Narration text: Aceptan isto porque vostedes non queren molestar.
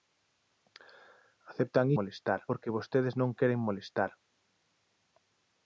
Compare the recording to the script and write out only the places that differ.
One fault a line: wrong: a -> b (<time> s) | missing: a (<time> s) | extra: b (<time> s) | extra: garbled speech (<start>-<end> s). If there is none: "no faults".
wrong: isto -> molestar (2.0 s)